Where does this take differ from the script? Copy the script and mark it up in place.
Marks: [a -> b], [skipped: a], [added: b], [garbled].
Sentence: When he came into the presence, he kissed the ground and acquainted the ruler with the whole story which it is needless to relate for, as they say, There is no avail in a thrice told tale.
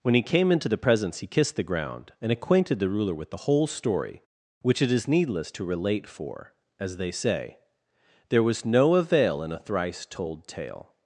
When he came into the presence, he kissed the ground and acquainted the ruler with the whole story which it is needless to relate for, as they say, There [is -> was] no avail in a thrice told tale.